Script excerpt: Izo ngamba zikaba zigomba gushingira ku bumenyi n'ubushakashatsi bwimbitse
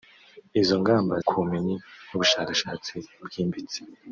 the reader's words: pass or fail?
fail